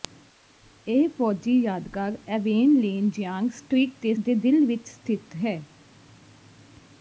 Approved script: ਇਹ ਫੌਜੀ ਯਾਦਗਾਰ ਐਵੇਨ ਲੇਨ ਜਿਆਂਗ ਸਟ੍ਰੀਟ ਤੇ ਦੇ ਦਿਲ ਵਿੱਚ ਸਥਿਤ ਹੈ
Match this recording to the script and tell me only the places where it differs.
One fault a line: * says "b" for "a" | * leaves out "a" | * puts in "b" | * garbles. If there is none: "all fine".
all fine